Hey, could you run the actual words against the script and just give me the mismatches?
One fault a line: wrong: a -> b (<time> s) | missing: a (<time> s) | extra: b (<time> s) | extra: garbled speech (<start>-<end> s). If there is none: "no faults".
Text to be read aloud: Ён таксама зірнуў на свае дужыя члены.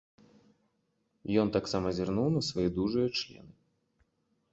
no faults